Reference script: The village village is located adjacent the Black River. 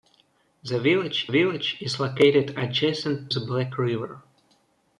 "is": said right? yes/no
yes